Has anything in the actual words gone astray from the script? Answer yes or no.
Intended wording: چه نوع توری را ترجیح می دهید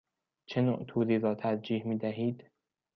no